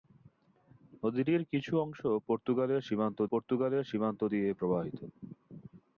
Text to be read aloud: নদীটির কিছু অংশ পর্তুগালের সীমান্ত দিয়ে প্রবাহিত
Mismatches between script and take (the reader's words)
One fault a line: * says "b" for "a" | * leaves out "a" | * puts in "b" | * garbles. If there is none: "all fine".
* puts in "পর্তুগালের সীমান্ত"